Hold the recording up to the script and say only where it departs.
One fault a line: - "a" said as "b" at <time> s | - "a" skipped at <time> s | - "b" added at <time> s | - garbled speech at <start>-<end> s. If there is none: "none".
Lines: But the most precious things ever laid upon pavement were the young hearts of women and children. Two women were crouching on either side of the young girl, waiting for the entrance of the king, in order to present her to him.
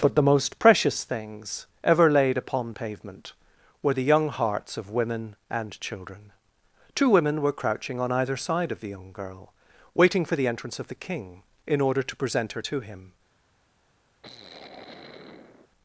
none